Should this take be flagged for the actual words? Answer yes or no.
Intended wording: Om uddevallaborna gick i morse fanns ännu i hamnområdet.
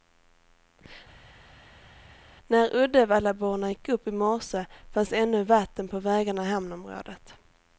yes